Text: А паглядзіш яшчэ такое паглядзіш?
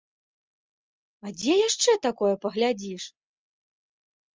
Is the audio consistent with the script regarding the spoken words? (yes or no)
no